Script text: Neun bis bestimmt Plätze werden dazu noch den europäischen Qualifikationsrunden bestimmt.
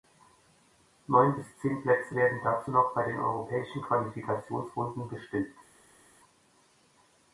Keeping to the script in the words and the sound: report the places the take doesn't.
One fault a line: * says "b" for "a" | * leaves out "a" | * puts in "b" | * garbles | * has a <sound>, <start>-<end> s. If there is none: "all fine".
* says "zehn" for "bestimmt"
* puts in "bei"